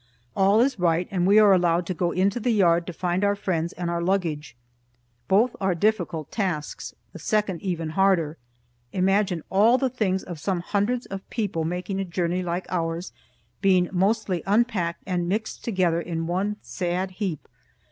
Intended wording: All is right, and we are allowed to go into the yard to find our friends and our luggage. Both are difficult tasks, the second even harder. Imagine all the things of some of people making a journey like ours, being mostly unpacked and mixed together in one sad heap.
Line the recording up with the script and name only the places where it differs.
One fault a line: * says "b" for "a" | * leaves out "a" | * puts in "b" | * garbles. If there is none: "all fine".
* puts in "hundreds"